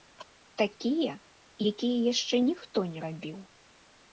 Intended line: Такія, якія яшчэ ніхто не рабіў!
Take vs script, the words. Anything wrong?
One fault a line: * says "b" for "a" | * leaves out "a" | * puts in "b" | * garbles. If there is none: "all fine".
all fine